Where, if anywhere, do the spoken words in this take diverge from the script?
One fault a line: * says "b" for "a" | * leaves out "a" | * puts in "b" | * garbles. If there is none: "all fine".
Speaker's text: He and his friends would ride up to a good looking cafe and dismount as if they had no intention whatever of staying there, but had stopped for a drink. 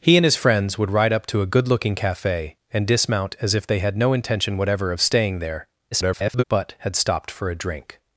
* garbles